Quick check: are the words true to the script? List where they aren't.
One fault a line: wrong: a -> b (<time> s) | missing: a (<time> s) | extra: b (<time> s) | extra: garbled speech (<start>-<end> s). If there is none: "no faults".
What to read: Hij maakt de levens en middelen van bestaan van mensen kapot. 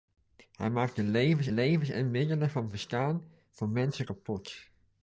extra: levens (1.5 s)